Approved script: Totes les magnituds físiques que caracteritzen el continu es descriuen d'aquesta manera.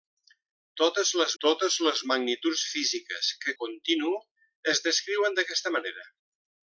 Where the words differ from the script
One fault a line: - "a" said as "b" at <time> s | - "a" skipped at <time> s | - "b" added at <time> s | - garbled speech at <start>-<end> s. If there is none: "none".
- "totes les" added at 1.4 s
- "caracteritzen el" skipped at 3.5 s